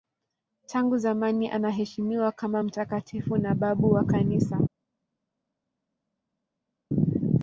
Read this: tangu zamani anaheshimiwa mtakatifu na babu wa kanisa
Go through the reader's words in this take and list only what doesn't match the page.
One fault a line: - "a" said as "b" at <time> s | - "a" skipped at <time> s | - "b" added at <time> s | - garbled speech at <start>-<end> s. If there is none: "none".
- "kama" added at 2.3 s